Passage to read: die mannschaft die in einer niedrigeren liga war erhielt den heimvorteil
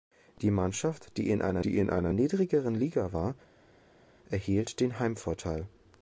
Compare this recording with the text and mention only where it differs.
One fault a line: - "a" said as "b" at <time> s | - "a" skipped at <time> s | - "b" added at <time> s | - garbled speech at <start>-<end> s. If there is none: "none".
- "die in einer" added at 1.6 s